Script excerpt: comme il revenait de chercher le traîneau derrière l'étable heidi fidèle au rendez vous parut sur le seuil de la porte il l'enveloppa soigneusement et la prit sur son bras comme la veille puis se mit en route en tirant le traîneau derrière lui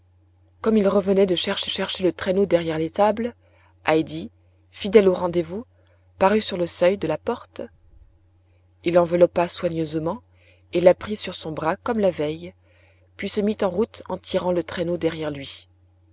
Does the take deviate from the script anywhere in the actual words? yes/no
yes